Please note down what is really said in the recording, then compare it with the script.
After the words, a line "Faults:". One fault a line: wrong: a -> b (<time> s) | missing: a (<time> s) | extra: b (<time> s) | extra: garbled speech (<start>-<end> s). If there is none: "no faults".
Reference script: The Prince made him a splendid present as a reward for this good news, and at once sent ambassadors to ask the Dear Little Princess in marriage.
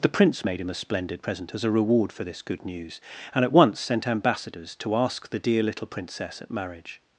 The Prince made him a splendid present as a reward for this good news, and at once sent ambassadors to ask the Dear Little Princess at marriage.
Faults:
wrong: in -> at (6.4 s)